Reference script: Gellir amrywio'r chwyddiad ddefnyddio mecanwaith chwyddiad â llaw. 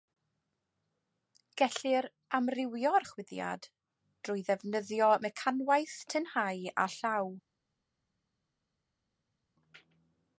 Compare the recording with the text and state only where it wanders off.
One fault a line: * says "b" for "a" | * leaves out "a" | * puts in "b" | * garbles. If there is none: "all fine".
* puts in "drwy"
* says "tynhau" for "chwyddiad"